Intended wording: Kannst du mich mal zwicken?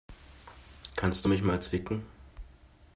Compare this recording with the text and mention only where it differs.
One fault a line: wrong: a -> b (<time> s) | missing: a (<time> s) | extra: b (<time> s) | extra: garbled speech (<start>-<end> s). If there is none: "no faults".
no faults